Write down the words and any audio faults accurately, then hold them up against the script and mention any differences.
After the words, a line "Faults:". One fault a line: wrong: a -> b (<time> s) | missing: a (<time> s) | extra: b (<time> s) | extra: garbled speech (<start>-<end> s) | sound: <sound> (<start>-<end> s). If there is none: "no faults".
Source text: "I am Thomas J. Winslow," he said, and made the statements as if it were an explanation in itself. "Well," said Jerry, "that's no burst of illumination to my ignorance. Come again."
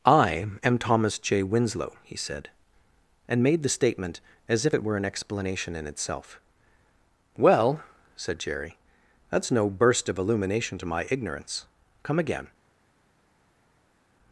"I am Thomas J. Winslow," he said, and made the statement as if it were an explanation in itself. "Well," said Jerry, "that's no burst of illumination to my ignorance. Come again."
Faults:
wrong: statements -> statement (3.7 s)